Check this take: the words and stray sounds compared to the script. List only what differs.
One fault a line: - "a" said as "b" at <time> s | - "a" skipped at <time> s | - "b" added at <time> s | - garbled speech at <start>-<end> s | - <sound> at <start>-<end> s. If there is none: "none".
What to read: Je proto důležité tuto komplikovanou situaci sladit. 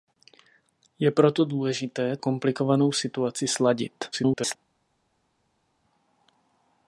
- "tuto" skipped at 2.2 s
- garbled speech at 4.1-4.6 s